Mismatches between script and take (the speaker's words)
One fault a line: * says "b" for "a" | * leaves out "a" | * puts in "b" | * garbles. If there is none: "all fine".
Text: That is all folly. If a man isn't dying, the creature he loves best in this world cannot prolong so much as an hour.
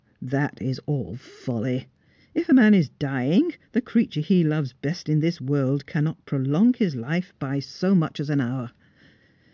* says "is" for "isn't"
* puts in "his life by"